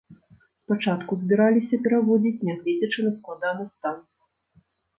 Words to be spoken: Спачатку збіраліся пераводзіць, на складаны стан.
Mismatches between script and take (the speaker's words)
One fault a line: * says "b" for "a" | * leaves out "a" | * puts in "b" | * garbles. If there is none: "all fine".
* puts in "нягледзячы"